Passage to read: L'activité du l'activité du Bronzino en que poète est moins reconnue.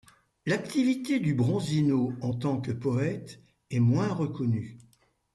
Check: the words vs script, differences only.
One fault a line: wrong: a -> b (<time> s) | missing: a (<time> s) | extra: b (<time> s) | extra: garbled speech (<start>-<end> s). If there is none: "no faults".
missing: l'activité du (1.4 s)
extra: tant (2.3 s)